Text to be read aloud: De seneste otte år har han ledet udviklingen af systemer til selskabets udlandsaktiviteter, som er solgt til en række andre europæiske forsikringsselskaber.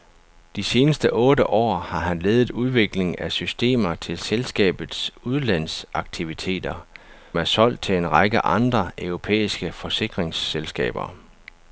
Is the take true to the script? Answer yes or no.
no